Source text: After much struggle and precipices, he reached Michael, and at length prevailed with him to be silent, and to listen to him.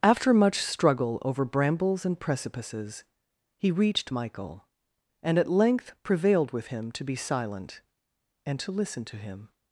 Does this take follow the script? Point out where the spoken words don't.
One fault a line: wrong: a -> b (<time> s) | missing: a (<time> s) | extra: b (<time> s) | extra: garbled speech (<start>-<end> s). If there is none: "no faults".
extra: over brambles (1.2 s)